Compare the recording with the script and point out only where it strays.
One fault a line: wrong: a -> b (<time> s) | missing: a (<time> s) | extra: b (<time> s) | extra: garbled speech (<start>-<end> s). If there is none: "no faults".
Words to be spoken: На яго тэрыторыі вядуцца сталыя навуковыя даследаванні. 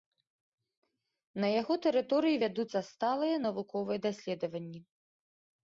no faults